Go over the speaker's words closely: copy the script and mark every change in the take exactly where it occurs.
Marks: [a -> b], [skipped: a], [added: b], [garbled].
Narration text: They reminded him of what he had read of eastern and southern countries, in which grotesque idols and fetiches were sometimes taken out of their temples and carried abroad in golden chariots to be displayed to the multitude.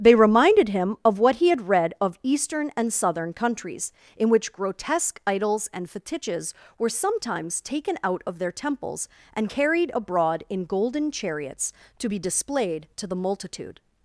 They reminded him of what he had read of eastern and southern countries, in which grotesque idols and fetiches were sometimes taken out of their temples and carried abroad in golden chariots to be displayed to the multitude.